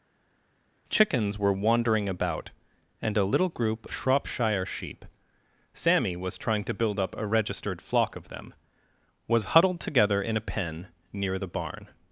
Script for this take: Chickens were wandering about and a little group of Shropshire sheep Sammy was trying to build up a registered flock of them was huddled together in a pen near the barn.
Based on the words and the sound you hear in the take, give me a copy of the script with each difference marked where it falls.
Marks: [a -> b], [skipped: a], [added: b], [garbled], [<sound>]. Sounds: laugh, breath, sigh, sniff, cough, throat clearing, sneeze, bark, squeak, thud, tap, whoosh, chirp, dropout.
Chickens were wandering about and a little group [skipped: of] Shropshire sheep Sammy was trying to build up a registered flock of them was huddled together in a pen near the barn.